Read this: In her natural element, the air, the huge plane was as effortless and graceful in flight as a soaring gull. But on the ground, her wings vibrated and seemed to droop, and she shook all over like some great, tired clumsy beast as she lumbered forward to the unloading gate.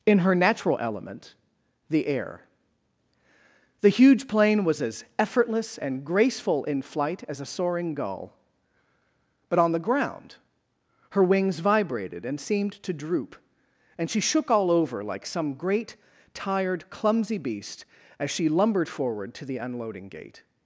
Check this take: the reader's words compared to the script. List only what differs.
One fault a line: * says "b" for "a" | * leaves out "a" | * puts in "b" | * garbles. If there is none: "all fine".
all fine